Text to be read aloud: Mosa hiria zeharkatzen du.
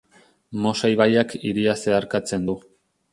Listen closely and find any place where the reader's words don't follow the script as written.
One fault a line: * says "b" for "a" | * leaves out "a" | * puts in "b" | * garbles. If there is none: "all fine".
* puts in "ibaiak"